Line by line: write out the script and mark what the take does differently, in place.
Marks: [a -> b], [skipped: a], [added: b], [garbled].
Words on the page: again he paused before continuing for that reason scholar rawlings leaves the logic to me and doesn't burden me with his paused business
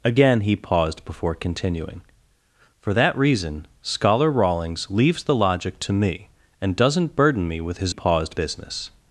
again he paused before continuing for that reason scholar rawlings leaves the logic to me and doesn't burden me with his paused business